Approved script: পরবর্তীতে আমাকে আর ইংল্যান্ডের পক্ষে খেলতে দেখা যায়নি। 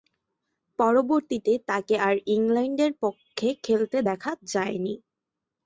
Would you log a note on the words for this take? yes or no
yes